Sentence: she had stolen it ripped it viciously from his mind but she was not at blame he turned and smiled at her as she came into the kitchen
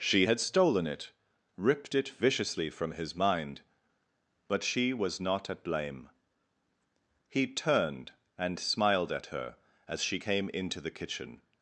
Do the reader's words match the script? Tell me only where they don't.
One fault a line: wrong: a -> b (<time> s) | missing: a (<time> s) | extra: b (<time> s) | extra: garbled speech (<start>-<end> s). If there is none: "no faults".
no faults